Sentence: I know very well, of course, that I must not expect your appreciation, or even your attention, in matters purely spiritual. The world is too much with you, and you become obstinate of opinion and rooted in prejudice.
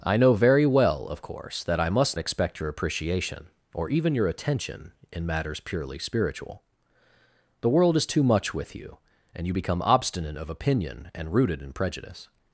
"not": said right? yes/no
no